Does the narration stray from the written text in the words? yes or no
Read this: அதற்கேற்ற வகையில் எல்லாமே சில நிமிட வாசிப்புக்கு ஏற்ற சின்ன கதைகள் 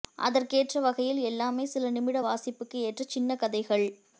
no